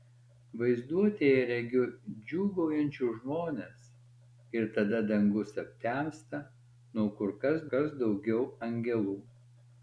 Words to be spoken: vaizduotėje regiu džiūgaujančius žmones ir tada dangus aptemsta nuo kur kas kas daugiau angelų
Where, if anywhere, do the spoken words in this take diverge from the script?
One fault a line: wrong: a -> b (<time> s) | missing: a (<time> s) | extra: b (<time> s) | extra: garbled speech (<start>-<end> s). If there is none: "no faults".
no faults